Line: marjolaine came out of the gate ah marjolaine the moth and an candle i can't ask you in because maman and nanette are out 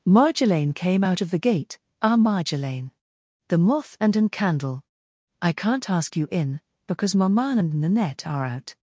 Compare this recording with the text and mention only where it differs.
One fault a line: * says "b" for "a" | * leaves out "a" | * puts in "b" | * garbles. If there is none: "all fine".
all fine